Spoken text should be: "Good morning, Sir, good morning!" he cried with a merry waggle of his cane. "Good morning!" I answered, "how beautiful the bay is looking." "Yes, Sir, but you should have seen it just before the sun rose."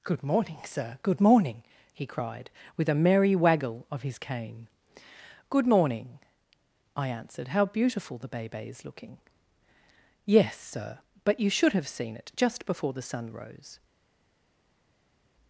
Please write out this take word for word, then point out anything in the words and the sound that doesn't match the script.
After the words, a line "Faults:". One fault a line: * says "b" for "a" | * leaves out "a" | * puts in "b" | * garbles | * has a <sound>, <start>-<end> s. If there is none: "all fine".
"Good morning, Sir, good morning!" he cried with a merry waggle of his cane. "Good morning!" I answered, "how beautiful the bay bay is looking." "Yes, Sir, but you should have seen it just before the sun rose."
Faults:
* puts in "bay"